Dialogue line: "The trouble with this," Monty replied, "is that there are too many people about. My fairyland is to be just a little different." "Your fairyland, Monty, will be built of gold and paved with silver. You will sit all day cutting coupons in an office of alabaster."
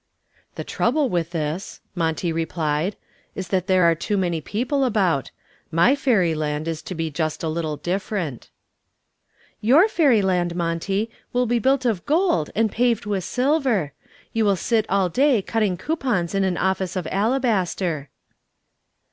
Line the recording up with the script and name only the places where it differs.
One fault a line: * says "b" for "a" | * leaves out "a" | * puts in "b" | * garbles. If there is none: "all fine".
all fine